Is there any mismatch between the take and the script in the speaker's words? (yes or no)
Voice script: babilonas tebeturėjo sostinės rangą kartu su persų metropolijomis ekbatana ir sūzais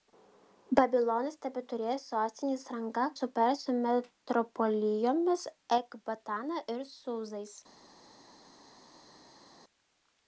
yes